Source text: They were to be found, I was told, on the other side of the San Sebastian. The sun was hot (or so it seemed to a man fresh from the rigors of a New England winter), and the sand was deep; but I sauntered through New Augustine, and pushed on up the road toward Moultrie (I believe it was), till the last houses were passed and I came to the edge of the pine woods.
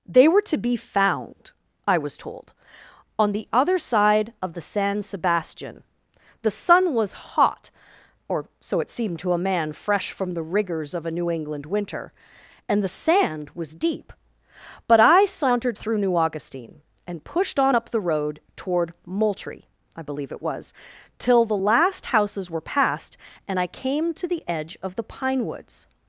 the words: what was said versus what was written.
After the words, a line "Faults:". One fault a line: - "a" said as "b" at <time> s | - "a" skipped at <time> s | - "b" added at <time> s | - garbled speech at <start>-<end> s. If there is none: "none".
They were to be found, I was told, on the other side of the San Sebastian. The sun was hot (or so it seemed to a man fresh from the rigors of a New England winter), and the sand was deep; but I sauntered through New Augustine, and pushed on up the road toward Moultrie (I believe it was), till the last houses were passed and I came to the edge of the pine woods.
Faults:
none